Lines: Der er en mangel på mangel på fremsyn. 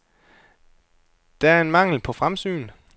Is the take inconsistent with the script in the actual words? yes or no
yes